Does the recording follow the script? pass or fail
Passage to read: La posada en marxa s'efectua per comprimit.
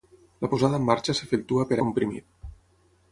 pass